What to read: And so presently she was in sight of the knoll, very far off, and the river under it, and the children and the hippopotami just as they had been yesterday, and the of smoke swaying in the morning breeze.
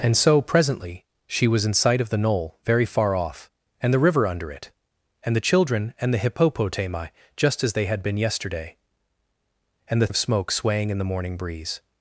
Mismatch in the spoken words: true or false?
false